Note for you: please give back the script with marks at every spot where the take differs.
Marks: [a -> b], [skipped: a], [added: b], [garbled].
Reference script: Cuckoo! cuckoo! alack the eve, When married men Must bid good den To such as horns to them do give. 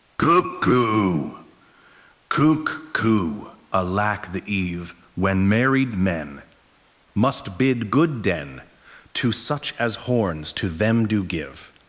Cuckoo! cuckoo! alack the eve, When married men Must bid good den To such as horns to them do give.